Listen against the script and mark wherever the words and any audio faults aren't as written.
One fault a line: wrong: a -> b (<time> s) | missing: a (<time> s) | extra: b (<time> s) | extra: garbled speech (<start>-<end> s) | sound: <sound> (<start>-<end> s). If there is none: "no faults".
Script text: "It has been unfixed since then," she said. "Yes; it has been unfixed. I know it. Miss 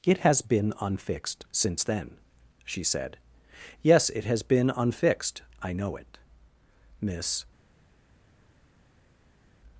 no faults